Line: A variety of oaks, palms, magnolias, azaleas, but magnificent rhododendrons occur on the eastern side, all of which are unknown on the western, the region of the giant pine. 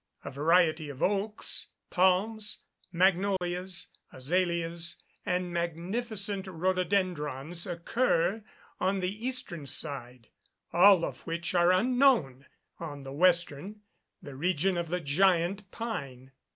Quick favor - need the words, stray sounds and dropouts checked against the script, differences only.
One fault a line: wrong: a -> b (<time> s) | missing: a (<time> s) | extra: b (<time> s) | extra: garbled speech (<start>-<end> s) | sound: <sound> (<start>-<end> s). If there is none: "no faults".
sound: dropout (3.4-3.4 s)
wrong: but -> and (5.3 s)